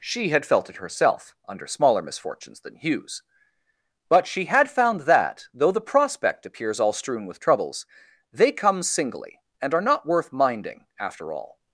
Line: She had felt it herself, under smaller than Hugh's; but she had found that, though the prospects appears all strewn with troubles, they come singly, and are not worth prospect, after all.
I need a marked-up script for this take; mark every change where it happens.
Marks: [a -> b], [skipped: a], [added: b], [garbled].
She had felt it herself, under smaller [added: misfortunes] than Hugh's; but she had found that, though the [prospects -> prospect] appears all strewn with troubles, they come singly, and are not worth [prospect, -> minding] after all.